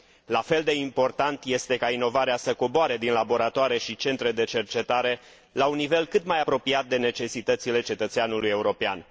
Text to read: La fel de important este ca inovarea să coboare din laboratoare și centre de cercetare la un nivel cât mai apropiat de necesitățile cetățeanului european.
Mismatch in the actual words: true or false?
false